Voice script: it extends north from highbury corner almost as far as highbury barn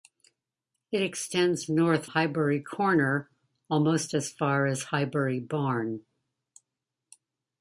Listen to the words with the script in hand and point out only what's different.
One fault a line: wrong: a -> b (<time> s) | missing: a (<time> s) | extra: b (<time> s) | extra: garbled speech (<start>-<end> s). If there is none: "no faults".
missing: from (2.1 s)